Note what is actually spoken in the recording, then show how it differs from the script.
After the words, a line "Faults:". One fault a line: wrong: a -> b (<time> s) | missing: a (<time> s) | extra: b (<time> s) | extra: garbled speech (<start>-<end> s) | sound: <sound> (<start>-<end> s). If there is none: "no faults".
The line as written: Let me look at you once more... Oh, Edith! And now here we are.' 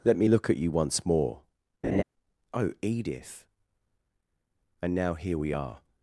Let me look at you once more... Oh, Edith! And now here we are.'
Faults:
sound: laugh (1.8-2.0 s)